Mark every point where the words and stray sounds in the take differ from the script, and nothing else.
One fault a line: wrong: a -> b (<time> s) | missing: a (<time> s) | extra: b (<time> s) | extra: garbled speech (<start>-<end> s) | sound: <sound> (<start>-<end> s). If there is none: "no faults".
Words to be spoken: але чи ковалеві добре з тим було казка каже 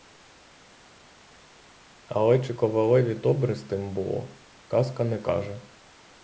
extra: не (5.0 s)